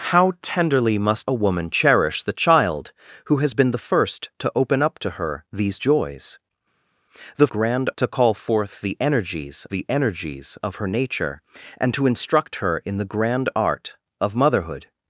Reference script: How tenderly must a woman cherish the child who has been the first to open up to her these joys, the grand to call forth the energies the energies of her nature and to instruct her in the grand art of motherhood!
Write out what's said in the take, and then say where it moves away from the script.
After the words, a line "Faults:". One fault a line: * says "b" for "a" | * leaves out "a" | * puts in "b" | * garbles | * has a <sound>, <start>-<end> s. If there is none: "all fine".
How tenderly must a woman cherish the child who has been the first to open up to her these joys, the grand to call forth the energies the energies of her nature and to instruct her in the grand art of motherhood!
Faults:
all fine